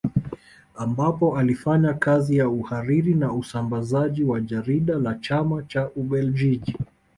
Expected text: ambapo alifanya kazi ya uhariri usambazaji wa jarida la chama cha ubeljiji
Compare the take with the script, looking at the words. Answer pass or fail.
fail